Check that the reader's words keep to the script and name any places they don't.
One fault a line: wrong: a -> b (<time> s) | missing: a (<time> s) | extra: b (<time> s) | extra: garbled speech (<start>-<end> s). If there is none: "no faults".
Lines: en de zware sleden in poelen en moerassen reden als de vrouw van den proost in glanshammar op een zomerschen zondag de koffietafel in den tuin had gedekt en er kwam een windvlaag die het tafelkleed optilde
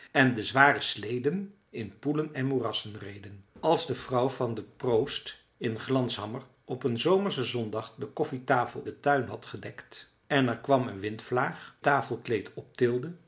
missing: in (8.8 s)
missing: die het (11.8 s)